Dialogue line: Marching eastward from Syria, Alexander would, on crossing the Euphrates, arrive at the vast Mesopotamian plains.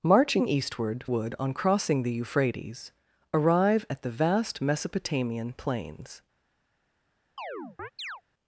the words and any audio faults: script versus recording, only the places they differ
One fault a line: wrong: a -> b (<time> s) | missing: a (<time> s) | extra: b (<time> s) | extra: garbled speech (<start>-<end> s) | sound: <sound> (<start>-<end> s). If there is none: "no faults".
missing: from Syria Alexander (1.0 s)
sound: chirp (7.4-8.2 s)